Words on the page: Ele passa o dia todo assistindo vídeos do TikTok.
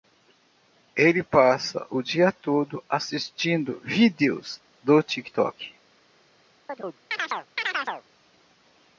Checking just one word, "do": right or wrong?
right